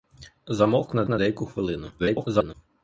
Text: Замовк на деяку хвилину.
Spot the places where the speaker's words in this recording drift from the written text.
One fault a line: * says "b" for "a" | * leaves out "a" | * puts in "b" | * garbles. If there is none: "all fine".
* puts in "на"
* garbles